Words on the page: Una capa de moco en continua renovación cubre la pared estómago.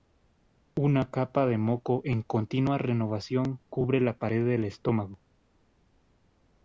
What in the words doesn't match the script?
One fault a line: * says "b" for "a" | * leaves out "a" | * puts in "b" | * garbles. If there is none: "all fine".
* puts in "del"